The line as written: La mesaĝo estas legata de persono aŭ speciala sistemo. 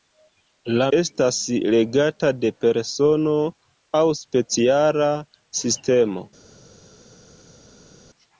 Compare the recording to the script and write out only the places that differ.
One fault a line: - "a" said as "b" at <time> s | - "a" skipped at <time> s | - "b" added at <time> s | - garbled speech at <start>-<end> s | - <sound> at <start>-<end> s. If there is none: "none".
- "mesaĝo" skipped at 0.8 s